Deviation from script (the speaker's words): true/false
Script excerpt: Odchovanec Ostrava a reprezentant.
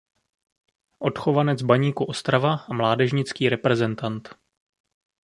true